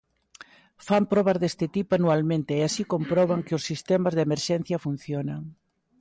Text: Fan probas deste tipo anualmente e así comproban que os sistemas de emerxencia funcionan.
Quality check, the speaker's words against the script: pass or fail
pass